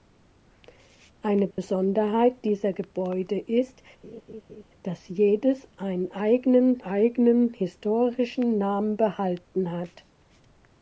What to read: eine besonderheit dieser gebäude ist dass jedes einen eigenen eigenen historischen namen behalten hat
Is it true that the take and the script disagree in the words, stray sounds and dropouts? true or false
true